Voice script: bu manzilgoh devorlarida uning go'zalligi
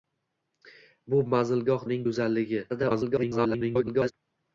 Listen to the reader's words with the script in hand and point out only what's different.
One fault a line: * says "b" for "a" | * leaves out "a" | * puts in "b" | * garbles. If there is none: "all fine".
* leaves out "devorlarida"
* garbles